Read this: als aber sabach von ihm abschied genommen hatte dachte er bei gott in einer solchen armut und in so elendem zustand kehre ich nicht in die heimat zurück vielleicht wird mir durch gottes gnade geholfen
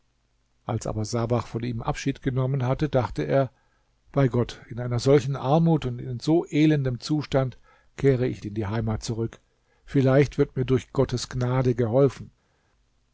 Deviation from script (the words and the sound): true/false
true